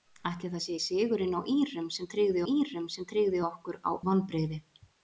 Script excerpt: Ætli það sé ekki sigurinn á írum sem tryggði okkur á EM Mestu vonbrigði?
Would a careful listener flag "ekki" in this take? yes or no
yes